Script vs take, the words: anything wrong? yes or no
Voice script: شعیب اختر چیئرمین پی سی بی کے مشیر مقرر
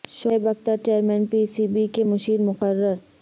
no